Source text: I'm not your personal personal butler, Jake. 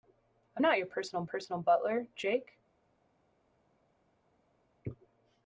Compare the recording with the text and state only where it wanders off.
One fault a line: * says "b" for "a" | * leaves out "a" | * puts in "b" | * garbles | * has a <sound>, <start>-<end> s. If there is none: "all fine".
all fine